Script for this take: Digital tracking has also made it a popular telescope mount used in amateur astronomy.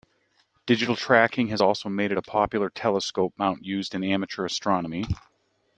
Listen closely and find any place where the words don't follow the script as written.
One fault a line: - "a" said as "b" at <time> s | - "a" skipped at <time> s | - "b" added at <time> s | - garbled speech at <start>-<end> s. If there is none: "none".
none